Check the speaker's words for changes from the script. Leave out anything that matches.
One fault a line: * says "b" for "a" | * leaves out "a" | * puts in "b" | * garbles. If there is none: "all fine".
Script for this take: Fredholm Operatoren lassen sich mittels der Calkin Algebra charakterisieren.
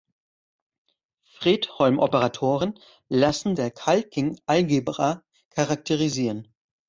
* leaves out "sich mittels"